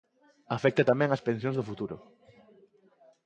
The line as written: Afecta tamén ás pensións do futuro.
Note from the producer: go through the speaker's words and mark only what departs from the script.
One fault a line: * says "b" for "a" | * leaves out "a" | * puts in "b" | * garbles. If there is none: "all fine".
all fine